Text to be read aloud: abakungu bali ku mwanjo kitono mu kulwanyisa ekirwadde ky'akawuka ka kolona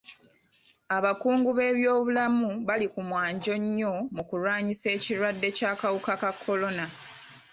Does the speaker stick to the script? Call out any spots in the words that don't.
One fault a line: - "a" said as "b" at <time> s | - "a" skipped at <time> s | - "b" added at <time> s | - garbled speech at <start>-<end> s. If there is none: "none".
- "b'ebyobulamu" added at 1.6 s
- "kitono" said as "nnyo" at 3.6 s